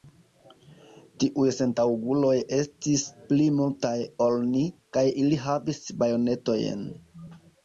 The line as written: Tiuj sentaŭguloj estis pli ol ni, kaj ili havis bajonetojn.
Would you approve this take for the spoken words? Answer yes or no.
no